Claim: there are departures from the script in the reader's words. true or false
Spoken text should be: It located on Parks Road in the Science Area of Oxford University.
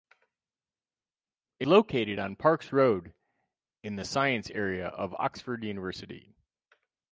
false